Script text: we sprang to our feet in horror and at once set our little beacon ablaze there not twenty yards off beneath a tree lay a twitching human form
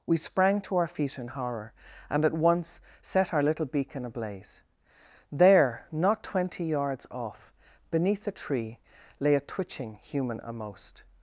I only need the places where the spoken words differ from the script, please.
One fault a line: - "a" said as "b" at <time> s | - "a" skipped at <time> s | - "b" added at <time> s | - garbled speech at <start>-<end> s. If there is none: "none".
- "form" said as "amost" at 10.4 s